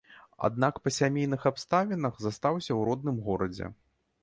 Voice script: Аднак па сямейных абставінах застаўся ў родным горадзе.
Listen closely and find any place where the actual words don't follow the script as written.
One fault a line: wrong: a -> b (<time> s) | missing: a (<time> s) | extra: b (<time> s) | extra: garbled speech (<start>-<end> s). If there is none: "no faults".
no faults